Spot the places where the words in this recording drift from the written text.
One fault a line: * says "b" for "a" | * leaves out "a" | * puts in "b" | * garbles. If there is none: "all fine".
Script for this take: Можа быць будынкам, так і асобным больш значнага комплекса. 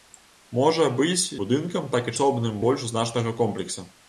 all fine